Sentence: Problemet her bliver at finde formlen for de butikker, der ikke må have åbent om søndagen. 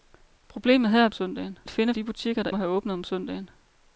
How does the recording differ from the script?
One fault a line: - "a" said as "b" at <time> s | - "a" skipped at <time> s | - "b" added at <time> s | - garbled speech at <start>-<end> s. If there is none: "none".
- "bliver" said as "søndagen" at 1.1 s
- "formlen for" skipped at 1.9 s
- "ikke" skipped at 2.5 s